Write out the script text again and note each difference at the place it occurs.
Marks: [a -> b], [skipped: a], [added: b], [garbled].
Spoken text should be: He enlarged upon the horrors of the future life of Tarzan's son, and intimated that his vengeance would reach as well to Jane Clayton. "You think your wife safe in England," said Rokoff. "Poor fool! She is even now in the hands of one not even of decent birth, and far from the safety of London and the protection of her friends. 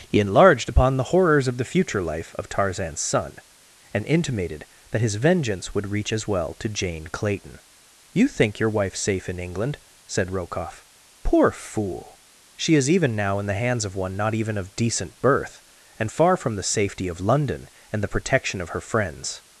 He enlarged upon the horrors of the future life of Tarzan's son, and intimated that his vengeance would reach as well to Jane Clayton. "You think your wife safe in England," said Rokoff. "Poor fool! She is even now in the hands of one not even of decent birth, and far from the safety of London and the protection of her friends.